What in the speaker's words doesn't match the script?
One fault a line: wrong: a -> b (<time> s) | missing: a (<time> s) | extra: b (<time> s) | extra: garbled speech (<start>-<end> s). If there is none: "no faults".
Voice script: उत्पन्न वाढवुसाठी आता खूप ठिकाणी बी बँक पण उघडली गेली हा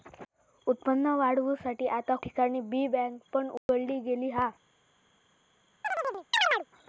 missing: खूप (2.1 s)